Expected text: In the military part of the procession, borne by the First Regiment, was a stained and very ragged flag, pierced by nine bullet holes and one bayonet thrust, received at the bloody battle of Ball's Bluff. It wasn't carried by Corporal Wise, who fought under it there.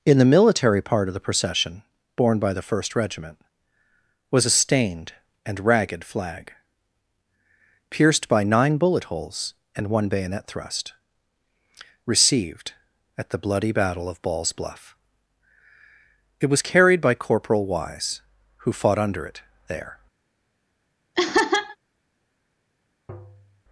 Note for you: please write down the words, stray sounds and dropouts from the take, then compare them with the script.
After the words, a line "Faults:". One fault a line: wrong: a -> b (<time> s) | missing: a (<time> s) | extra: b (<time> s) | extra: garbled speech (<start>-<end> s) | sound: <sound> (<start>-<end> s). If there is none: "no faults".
In the military part of the procession, borne by the First Regiment, was a stained and ragged flag, pierced by nine bullet holes and one bayonet thrust, received at the bloody battle of Ball's Bluff. It was carried by Corporal Wise, who fought under it there.
Faults:
missing: very (5.6 s)
wrong: wasn't -> was (16.5 s)
sound: laugh (21.1-21.8 s)
sound: tap (23.1-23.6 s)